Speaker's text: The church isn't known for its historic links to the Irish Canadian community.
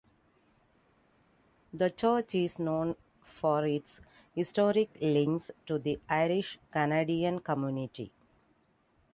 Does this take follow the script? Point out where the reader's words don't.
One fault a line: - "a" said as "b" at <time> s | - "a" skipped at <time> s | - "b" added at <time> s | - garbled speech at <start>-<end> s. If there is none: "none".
- "isn't" said as "is" at 2.3 s